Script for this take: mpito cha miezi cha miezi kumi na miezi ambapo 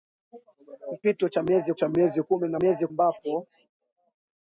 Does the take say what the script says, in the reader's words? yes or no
yes